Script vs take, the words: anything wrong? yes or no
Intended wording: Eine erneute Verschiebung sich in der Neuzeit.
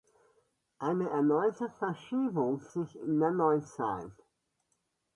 no